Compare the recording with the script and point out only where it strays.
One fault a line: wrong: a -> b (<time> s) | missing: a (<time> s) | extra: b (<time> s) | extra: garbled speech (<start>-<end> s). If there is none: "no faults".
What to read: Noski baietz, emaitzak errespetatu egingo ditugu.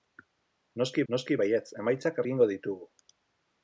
extra: noski (1.1 s)
missing: errespetatu (2.2 s)